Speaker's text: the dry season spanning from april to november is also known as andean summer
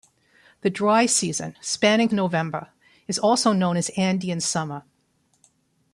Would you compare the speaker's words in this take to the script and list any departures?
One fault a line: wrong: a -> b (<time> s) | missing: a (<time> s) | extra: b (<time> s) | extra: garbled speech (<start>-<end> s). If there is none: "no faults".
missing: from april to (2.1 s)